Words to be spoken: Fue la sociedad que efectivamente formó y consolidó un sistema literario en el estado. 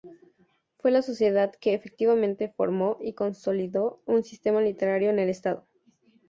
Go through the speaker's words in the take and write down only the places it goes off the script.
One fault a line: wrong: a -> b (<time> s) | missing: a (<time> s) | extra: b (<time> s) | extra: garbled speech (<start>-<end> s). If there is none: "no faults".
no faults